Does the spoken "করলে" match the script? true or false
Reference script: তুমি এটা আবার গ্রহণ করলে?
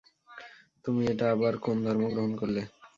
true